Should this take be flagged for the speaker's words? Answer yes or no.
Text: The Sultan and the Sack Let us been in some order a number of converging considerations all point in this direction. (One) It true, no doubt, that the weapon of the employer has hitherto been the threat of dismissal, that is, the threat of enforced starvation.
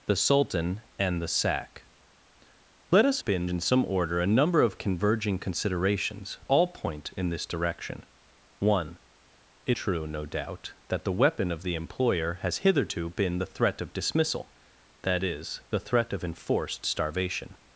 no